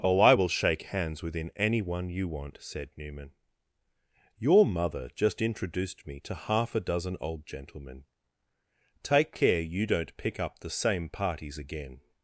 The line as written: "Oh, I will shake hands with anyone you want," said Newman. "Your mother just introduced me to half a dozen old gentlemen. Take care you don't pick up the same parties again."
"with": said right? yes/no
no